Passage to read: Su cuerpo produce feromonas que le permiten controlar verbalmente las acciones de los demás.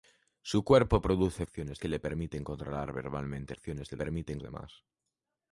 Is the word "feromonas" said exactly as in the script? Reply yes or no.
no